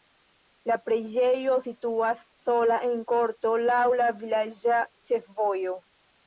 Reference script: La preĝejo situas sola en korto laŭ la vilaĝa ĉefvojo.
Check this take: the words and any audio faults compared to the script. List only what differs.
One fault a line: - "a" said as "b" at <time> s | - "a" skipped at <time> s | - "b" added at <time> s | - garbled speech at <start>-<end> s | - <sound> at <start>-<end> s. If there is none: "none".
none